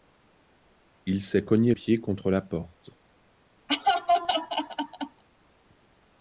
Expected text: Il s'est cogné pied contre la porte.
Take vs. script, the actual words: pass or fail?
pass